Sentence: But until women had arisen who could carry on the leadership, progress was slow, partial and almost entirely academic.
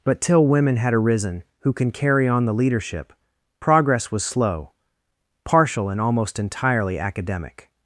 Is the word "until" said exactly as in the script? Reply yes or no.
no